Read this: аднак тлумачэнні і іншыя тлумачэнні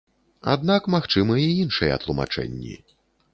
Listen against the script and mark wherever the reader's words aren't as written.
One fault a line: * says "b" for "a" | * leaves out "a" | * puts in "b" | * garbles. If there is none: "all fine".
* says "магчымы" for "тлумачэнні"